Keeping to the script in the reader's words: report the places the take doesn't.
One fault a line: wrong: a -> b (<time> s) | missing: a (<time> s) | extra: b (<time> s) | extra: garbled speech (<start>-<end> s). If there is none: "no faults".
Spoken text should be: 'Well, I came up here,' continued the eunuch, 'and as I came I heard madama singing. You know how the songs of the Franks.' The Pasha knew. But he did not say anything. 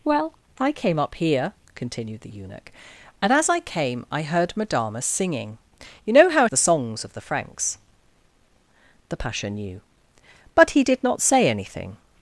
no faults